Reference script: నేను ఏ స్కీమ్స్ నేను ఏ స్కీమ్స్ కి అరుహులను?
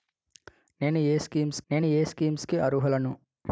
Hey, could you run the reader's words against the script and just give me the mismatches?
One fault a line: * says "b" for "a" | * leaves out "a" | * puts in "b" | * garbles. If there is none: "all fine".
all fine